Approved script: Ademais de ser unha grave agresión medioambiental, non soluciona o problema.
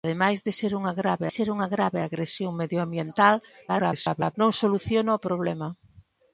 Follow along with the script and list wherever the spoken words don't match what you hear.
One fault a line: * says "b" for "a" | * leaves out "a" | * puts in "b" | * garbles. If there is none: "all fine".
* puts in "ser unha grave"
* garbles